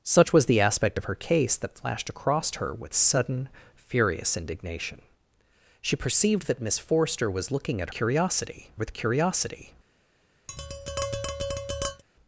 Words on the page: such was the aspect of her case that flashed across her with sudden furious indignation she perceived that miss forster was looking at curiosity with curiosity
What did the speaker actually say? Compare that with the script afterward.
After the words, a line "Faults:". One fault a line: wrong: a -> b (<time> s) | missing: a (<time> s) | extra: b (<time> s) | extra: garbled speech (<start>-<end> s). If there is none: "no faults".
such was the aspect of her case that flashed across her with sudden furious indignation she perceived that miss forster was looking at curiosity with curiosity
Faults:
no faults